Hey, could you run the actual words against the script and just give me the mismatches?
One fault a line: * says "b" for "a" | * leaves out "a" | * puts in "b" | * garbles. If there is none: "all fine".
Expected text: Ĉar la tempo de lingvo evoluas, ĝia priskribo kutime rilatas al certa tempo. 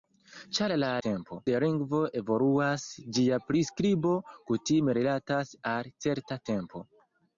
all fine